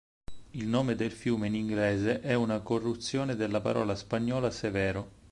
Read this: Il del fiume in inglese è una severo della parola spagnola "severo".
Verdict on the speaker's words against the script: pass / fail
fail